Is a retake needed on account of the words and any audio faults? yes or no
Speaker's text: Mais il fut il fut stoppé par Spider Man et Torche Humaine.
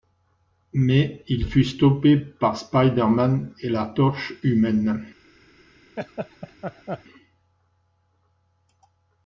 yes